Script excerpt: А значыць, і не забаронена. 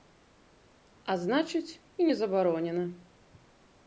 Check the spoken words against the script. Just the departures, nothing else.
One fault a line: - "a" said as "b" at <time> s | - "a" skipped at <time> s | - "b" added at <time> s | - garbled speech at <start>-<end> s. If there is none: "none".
none